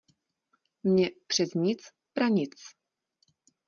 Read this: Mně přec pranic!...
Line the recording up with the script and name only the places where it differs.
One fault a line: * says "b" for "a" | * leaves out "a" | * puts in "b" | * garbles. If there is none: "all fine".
* puts in "nic"